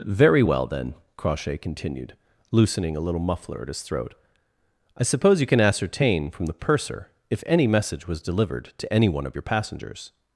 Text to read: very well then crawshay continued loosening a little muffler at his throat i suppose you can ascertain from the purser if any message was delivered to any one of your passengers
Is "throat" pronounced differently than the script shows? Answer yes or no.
no